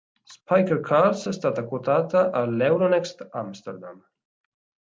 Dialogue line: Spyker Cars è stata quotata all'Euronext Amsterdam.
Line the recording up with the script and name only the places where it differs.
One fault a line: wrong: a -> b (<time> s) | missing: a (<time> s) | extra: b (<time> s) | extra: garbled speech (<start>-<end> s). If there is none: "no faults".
no faults